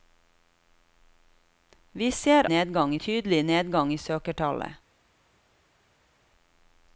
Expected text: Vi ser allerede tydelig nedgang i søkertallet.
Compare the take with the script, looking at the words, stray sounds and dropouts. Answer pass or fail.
fail